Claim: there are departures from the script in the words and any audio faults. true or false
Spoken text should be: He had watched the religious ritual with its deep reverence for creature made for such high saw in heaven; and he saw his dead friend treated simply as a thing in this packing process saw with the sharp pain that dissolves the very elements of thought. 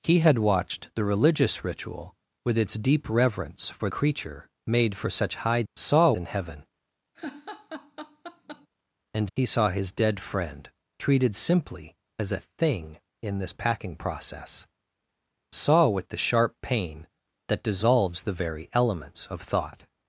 true